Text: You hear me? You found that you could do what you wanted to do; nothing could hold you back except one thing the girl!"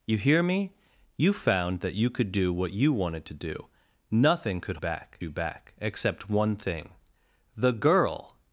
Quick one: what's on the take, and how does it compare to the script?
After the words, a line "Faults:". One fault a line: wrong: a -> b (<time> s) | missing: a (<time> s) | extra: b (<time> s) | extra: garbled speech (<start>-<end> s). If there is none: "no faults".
You hear me? You found that you could do what you wanted to do; nothing could back you back except one thing the girl!"
Faults:
wrong: hold -> back (4.7 s)